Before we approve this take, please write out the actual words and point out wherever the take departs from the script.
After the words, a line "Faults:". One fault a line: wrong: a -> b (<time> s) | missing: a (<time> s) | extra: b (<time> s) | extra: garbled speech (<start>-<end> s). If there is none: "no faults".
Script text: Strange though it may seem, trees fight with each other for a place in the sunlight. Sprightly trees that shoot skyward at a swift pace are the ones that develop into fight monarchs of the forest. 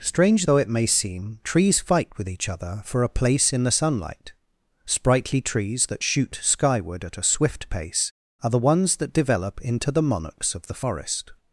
Strange though it may seem, trees fight with each other for a place in the sunlight. Sprightly trees that shoot skyward at a swift pace are the ones that develop into the monarchs of the forest.
Faults:
wrong: fight -> the (9.9 s)